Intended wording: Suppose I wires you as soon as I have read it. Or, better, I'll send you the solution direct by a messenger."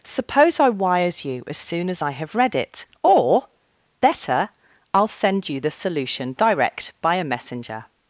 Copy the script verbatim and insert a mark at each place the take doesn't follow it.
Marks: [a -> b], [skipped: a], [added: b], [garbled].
Suppose I wires you as soon as I have read it. Or, better, I'll send you the solution direct by a messenger."